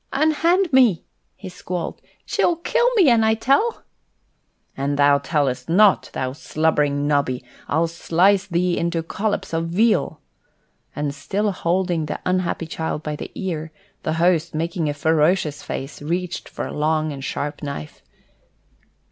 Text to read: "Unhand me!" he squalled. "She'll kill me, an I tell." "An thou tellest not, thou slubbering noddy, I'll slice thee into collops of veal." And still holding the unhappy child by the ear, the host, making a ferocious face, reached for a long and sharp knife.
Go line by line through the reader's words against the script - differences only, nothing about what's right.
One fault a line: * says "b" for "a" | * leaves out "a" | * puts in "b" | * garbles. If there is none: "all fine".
all fine